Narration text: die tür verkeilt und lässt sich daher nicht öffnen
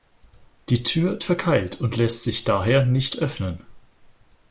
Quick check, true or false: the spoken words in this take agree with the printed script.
true